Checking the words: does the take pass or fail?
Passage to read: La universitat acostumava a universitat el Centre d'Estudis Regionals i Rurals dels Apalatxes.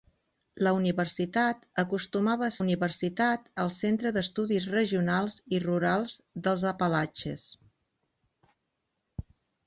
pass